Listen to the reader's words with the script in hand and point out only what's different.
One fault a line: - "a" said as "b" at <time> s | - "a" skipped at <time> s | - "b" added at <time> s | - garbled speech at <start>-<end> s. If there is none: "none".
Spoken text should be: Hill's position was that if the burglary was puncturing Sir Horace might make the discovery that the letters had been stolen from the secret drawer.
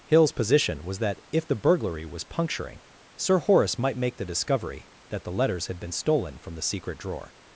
none